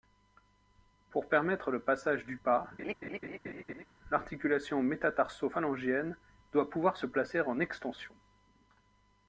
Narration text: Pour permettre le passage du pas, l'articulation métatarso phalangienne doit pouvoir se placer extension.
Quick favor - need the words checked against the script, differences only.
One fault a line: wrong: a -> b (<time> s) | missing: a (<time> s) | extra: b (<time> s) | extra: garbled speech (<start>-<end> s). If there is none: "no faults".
extra: en (7.4 s)